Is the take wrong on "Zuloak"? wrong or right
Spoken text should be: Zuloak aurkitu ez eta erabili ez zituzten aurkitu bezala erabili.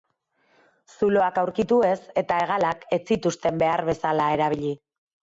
right